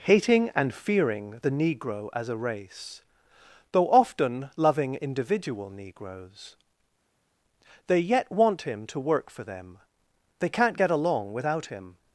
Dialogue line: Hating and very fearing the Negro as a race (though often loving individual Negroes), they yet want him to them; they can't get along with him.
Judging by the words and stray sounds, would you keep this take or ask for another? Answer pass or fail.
fail